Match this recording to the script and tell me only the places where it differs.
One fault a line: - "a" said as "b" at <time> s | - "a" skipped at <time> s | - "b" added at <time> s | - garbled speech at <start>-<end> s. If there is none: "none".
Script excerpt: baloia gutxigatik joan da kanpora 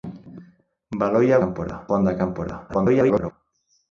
- "gutxigatik" said as "kanpora" at 1.4 s
- garbled speech at 2.7-3.3 s